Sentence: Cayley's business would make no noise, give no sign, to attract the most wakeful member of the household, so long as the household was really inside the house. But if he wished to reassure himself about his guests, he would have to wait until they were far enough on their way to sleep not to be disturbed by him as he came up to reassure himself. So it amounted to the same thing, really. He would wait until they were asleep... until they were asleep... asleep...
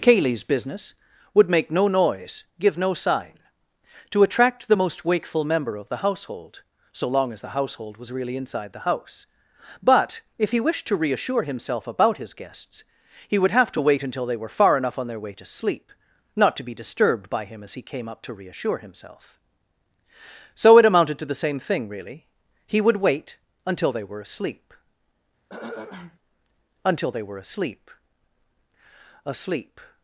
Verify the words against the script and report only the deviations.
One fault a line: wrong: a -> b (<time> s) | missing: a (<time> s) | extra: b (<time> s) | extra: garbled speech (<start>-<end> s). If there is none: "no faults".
no faults